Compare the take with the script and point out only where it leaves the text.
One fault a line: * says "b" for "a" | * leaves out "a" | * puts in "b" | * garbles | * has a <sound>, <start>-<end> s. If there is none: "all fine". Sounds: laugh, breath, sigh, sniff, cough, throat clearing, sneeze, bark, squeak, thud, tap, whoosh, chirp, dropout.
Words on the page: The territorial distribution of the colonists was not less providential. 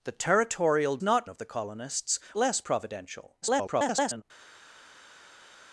* says "not" for "distribution"
* leaves out "was not"
* garbles